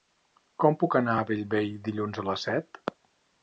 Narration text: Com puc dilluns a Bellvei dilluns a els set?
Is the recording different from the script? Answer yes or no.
yes